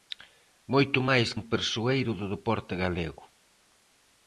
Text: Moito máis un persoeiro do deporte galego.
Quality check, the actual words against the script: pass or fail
pass